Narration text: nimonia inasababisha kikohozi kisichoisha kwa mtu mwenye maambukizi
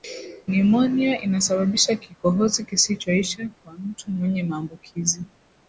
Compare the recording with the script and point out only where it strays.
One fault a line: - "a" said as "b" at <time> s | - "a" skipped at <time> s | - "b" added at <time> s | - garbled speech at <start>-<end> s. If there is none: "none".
none